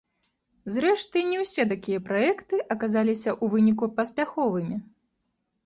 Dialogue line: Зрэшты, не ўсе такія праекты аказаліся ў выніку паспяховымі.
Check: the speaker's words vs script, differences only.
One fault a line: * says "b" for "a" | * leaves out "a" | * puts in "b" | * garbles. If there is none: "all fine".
all fine